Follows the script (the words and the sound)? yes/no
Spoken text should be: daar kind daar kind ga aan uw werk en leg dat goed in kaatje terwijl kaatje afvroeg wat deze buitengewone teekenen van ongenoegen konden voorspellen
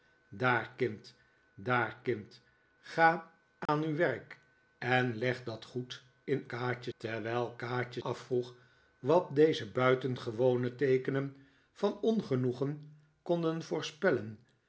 no